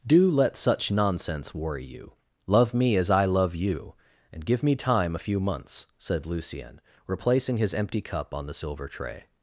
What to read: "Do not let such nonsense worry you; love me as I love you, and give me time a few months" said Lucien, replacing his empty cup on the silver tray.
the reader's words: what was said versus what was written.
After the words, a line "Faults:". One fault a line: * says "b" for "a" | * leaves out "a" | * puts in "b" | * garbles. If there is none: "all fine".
"Do let such nonsense worry you; love me as I love you, and give me time a few months" said Lucien, replacing his empty cup on the silver tray.
Faults:
* leaves out "not"